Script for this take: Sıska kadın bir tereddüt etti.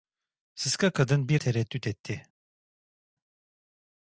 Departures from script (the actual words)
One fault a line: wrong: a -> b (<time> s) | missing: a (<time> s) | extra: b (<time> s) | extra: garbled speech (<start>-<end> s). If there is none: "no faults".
no faults